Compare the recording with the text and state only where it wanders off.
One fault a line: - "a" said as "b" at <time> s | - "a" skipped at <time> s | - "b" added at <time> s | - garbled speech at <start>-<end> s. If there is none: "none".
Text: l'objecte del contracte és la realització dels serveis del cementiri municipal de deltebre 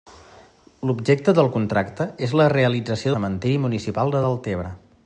- "dels serveis del" skipped at 3.1 s